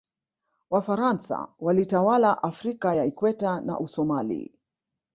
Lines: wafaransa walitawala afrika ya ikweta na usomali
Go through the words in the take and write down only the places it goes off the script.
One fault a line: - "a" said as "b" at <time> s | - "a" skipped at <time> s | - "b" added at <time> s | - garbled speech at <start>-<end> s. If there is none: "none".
none